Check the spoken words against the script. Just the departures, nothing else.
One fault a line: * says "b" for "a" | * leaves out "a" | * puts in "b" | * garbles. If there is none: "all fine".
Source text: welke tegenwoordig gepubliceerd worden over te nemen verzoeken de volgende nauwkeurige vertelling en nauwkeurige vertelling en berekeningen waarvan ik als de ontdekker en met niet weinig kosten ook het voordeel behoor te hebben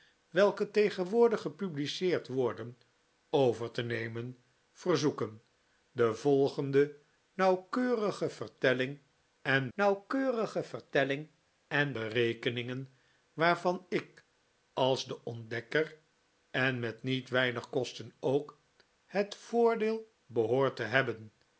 all fine